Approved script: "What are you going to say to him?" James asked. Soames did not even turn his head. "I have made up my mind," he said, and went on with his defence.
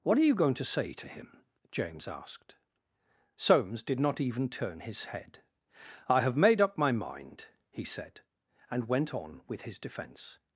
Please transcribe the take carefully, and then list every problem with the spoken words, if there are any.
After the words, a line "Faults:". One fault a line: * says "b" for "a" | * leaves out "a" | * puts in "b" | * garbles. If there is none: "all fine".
"What are you going to say to him?" James asked. Soames did not even turn his head. "I have made up my mind," he said, and went on with his defence.
Faults:
all fine